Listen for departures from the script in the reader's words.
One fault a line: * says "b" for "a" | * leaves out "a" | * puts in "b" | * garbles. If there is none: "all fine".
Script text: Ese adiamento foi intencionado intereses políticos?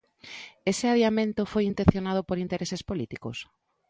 * puts in "por"